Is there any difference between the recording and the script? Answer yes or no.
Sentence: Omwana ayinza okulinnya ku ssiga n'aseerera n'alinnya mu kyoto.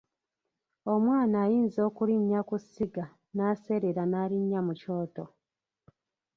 no